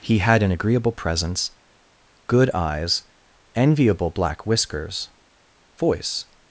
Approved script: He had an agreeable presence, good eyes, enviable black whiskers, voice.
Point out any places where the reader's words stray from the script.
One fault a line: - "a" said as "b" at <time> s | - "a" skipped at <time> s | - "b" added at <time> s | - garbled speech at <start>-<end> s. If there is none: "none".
none